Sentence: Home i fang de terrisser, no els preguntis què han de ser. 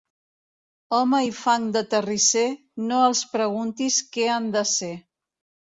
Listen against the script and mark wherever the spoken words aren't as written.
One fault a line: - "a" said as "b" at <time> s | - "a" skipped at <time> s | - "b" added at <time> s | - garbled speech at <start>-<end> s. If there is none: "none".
none